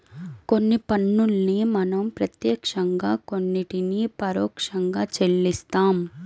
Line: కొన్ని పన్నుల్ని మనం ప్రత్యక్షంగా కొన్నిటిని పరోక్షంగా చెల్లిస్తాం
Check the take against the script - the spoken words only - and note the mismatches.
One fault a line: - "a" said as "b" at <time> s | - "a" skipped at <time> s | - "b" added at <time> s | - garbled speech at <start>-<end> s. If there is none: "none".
none